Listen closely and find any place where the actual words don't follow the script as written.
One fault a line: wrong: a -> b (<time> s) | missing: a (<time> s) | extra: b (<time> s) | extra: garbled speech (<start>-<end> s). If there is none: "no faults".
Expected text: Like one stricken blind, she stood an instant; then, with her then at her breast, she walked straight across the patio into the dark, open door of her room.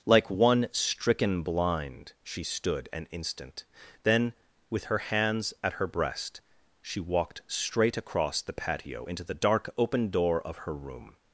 wrong: then -> hands (5.0 s)